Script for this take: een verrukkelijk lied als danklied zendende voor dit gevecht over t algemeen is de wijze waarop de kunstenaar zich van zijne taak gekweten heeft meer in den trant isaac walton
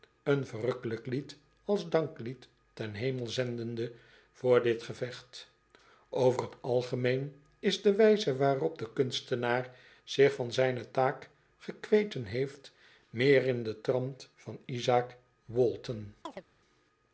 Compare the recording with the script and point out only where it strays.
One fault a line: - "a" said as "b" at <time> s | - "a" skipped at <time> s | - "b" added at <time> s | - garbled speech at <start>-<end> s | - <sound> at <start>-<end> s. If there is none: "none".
- "ten hemel" added at 2.7 s
- "van" added at 14.3 s
- chirp at 16.2-16.4 s